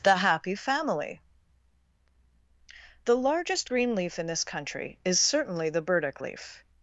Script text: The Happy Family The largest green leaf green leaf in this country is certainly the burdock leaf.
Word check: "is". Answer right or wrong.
right